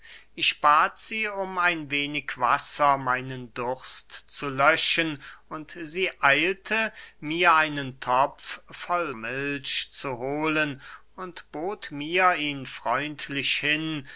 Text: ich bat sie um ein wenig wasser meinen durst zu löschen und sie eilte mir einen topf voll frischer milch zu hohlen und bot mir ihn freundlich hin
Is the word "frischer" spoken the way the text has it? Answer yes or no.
no